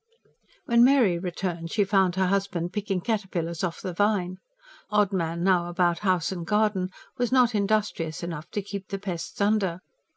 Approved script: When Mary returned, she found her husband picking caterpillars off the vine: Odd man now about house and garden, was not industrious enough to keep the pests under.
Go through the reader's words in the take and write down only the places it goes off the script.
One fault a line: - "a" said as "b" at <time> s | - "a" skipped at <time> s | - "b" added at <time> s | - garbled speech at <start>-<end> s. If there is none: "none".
none